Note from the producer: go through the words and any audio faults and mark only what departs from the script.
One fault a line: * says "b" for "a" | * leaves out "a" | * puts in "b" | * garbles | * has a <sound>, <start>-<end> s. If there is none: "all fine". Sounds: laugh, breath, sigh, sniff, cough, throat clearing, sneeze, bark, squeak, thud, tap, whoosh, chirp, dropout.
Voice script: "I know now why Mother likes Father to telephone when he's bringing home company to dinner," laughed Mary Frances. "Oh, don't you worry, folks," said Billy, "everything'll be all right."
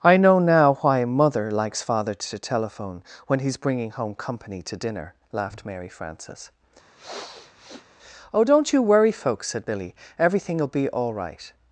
* has a sniff, 7.0-7.9 s